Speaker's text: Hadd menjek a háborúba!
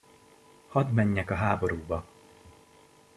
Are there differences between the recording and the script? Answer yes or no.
no